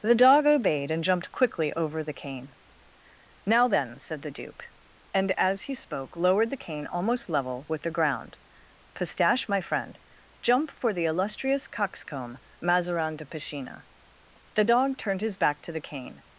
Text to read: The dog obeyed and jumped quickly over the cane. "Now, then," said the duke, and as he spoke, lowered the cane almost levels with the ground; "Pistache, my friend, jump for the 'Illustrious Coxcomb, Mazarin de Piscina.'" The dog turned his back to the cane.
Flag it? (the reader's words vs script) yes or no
yes